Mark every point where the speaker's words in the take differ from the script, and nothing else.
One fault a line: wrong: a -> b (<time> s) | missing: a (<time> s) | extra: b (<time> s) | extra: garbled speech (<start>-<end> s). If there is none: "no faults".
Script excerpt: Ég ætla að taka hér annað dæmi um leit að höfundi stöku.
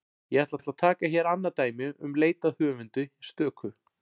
extra: ætla (0.6 s)